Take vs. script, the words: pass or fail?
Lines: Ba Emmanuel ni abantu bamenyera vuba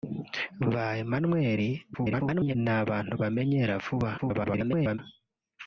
fail